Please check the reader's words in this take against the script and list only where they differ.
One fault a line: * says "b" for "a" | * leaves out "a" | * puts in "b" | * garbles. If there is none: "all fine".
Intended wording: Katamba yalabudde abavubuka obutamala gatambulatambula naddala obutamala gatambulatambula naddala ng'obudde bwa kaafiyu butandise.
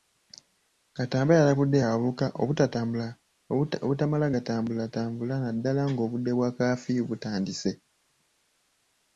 * leaves out "obutamala gatambulatambula naddala"